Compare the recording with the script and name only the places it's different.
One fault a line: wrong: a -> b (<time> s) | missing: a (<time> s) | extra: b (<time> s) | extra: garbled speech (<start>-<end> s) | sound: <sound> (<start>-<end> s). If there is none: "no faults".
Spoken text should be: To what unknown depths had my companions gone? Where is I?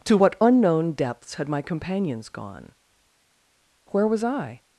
wrong: is -> was (4.1 s)